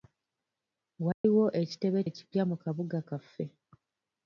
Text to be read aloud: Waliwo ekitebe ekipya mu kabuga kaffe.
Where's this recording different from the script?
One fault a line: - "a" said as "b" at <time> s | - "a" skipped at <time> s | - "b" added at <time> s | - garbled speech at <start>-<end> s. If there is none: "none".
none